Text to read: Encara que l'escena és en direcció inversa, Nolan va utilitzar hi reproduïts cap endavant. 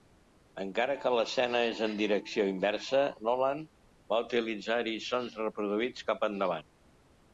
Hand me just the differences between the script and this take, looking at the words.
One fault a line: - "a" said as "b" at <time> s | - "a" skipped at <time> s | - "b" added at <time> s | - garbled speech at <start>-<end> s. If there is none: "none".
- "sons" added at 5.1 s